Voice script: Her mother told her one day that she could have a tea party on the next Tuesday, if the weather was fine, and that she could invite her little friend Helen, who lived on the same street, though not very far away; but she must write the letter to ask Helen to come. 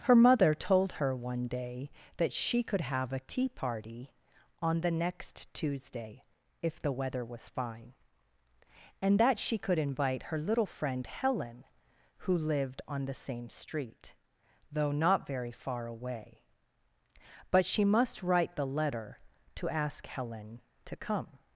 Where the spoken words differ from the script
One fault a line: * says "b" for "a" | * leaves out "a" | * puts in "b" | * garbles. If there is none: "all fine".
all fine